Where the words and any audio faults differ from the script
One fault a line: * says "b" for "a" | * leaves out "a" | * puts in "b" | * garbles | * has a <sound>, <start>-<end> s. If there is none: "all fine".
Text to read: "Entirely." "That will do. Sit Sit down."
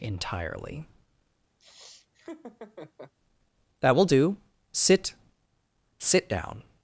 * has a laugh, 1.6-3.1 s